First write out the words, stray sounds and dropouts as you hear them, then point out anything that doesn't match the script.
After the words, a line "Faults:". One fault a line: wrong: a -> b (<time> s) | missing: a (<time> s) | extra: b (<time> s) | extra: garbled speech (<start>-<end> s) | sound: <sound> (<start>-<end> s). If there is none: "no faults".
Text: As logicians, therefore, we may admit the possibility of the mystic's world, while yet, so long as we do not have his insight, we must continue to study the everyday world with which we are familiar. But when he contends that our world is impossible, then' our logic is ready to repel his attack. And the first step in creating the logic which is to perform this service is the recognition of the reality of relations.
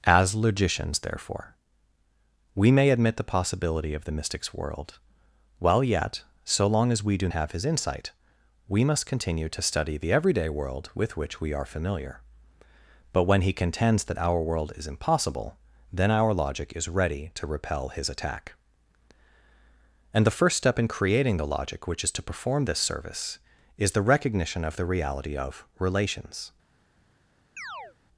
As logicians, therefore, we may admit the possibility of the mystic's world, while yet, so long as we do have his insight, we must continue to study the everyday world with which we are familiar. But when he contends that our world is impossible, then' our logic is ready to repel his attack. And the first step in creating the logic which is to perform this service is the recognition of the reality of relations.
Faults:
missing: not (7.3 s)
sound: chirp (27.6-28.0 s)